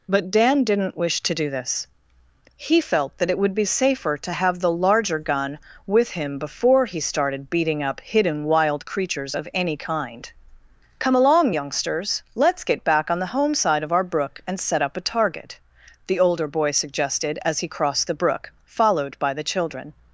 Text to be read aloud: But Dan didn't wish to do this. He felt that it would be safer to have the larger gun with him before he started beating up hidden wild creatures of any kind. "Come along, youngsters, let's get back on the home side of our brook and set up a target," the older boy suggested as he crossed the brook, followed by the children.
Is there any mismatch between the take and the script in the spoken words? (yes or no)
no